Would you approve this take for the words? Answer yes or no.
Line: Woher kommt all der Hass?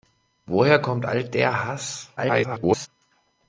no